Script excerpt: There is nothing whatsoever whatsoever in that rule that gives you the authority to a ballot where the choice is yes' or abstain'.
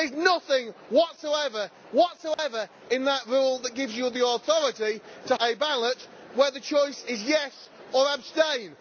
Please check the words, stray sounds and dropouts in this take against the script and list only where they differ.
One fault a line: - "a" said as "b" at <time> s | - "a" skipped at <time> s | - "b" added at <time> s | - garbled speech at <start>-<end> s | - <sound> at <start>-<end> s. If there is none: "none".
- dropout at 2.3-2.4 s